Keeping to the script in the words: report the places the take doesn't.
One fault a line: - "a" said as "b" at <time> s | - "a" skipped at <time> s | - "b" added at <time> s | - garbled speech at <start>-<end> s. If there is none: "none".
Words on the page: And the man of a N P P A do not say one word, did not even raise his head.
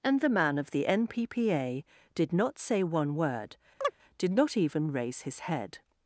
- "a" said as "the" at 0.7 s
- "do" said as "did" at 2.1 s